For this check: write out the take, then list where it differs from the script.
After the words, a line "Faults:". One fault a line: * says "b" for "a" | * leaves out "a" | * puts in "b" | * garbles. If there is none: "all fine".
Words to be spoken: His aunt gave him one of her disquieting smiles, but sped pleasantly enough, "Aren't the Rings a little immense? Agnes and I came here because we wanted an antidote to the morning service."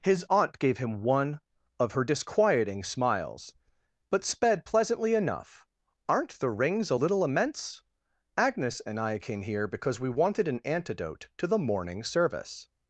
His aunt gave him one of her disquieting smiles, but sped pleasantly enough, "Aren't the Rings a little immense? Agnes and I came here because we wanted an antidote to the morning service."
Faults:
all fine